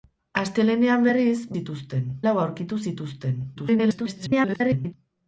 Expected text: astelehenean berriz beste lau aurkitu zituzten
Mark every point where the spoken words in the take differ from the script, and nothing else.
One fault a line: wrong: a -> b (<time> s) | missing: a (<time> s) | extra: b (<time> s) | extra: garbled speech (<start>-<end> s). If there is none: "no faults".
wrong: beste -> zituzten (1.6 s)
extra: garbled speech (3.5-4.9 s)